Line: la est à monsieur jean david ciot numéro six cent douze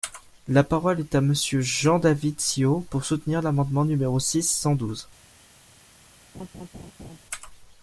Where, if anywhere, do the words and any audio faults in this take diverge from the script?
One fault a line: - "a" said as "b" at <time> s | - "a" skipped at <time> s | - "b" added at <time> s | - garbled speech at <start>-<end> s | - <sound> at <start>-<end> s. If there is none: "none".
- "parole" added at 0.6 s
- "pour soutenir l'amendement" added at 2.9 s
- laugh at 6.3-7.2 s